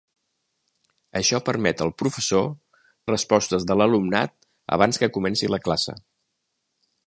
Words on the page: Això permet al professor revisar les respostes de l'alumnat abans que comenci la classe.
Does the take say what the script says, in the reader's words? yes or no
no